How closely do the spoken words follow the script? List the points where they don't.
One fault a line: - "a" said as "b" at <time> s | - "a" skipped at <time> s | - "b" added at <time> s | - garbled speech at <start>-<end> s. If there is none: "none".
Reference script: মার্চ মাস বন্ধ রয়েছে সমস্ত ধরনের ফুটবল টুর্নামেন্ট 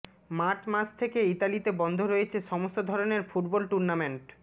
- "থেকে ইতালিতে" added at 1.0 s